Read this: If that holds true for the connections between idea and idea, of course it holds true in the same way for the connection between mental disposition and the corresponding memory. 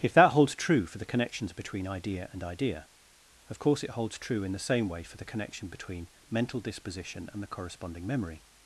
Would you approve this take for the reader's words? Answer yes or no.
yes